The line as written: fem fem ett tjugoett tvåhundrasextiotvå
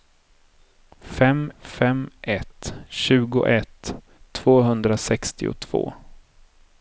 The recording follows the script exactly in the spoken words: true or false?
true